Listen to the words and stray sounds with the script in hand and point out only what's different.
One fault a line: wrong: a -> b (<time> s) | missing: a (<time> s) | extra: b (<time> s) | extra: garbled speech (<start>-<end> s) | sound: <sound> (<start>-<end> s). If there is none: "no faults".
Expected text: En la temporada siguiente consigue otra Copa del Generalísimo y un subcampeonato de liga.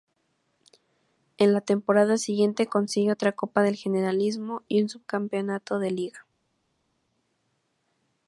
no faults